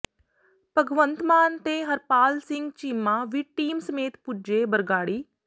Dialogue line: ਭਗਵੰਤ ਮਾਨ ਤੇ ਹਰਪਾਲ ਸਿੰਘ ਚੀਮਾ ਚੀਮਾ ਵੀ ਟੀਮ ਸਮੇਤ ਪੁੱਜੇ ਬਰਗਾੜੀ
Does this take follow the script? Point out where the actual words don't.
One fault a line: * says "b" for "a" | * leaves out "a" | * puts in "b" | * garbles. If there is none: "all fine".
* leaves out "ਚੀਮਾ"